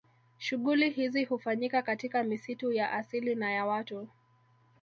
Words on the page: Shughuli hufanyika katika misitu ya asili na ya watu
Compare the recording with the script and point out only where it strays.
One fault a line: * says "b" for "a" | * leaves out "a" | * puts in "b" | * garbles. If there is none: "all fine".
* puts in "hizi"